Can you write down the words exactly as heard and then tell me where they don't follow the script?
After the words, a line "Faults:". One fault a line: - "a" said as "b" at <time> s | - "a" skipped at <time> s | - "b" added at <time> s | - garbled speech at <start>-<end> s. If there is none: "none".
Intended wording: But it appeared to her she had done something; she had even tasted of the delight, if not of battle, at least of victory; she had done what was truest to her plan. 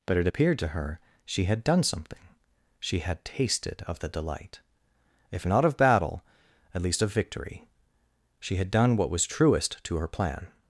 But it appeared to her she had done something; she had tasted of the delight, if not of battle, at least of victory; she had done what was truest to her plan.
Faults:
- "even" skipped at 3.2 s